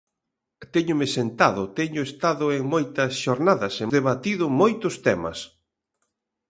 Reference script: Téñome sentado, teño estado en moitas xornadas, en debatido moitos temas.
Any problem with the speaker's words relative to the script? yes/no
no